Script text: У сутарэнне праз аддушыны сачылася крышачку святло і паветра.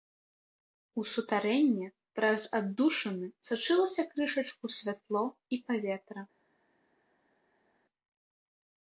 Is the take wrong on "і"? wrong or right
right